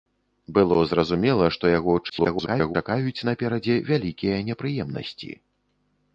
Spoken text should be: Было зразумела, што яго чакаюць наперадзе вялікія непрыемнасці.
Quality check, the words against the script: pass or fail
fail